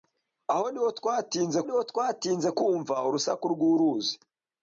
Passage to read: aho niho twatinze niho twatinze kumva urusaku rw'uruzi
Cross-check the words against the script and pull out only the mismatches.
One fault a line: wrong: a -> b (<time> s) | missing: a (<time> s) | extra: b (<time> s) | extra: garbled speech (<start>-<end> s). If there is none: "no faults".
no faults